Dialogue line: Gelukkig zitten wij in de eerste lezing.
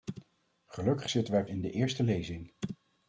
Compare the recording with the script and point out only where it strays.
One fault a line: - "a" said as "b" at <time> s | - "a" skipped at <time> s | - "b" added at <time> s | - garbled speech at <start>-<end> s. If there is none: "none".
none